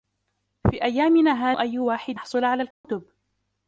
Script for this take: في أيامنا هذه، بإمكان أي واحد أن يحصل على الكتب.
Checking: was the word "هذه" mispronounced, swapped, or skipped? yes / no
yes